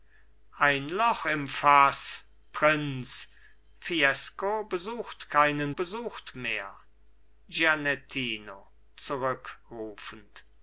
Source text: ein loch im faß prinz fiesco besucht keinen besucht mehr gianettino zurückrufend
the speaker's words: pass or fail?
pass